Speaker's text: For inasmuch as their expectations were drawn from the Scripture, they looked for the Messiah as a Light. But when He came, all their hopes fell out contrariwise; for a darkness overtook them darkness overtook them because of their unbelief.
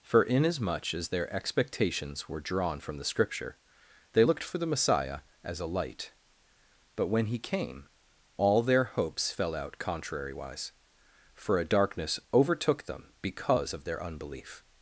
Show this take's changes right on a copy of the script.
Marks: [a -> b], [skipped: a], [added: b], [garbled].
For inasmuch as their expectations were drawn from the Scripture, they looked for the Messiah as a Light. But when He came, all their hopes fell out contrariwise; for a darkness overtook them [skipped: darkness overtook them] because of their unbelief.